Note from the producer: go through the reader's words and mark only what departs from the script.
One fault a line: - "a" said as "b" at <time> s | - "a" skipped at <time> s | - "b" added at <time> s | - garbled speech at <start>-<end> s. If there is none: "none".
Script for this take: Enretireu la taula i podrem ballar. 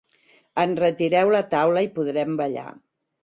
none